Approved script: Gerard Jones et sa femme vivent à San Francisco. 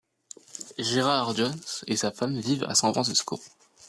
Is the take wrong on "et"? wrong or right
right